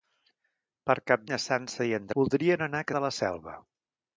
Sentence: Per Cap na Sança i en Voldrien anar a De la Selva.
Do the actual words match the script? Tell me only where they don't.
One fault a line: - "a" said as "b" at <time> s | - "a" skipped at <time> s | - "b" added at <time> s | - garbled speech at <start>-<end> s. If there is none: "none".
none